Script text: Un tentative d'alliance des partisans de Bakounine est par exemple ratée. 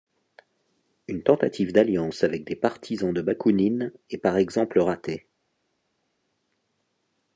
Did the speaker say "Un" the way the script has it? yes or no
no